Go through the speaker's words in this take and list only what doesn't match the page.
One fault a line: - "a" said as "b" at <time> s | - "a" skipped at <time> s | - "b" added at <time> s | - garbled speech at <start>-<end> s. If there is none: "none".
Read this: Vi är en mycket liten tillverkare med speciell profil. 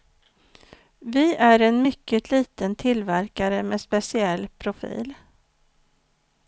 none